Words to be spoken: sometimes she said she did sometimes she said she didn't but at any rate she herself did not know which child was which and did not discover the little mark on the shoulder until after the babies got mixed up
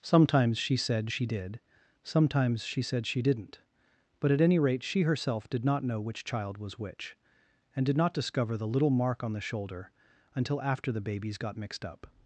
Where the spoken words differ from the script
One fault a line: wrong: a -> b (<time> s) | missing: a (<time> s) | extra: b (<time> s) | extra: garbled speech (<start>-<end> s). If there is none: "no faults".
no faults